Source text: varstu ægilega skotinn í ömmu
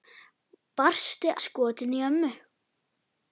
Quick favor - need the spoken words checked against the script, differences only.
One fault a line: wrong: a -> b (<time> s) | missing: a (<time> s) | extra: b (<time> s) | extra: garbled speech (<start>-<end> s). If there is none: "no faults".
missing: ægilega (1.3 s)